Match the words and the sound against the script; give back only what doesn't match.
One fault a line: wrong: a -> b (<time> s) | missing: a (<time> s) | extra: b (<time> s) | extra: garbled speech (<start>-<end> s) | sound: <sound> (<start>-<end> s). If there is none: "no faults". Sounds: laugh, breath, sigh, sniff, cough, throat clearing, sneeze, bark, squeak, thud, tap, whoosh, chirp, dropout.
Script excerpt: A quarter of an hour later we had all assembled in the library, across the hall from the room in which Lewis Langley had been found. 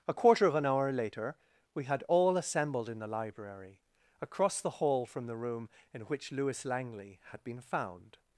no faults